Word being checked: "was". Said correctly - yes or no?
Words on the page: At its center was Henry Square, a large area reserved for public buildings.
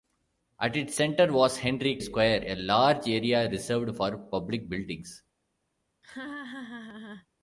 yes